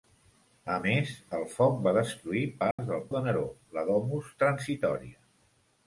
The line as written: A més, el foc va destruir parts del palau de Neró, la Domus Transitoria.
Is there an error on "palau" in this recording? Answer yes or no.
yes